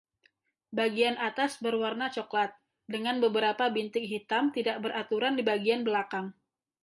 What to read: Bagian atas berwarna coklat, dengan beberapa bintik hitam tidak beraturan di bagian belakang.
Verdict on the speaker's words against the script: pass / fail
pass